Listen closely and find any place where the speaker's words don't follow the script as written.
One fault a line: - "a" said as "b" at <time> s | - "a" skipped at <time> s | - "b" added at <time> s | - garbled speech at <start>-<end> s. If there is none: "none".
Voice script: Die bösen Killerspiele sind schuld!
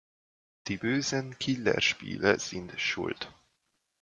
none